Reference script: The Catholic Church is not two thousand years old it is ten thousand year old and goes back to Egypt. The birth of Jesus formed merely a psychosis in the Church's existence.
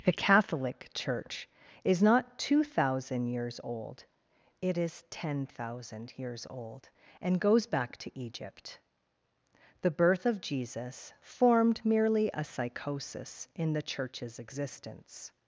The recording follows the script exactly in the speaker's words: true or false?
false